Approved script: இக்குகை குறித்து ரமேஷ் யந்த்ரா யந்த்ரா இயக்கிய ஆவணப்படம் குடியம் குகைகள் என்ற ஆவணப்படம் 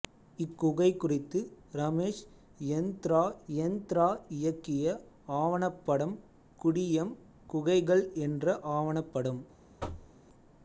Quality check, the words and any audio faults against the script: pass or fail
fail